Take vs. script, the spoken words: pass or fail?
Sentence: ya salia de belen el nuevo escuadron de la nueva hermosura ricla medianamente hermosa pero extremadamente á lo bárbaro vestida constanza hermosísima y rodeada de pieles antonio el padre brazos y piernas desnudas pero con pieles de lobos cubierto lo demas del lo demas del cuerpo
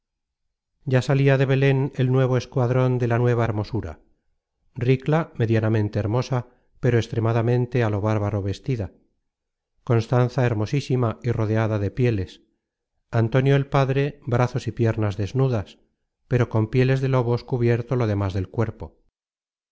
fail